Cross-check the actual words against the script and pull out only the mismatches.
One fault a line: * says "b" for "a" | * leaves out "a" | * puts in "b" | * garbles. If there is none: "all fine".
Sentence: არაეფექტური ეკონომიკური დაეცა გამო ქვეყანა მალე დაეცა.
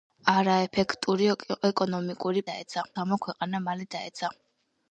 all fine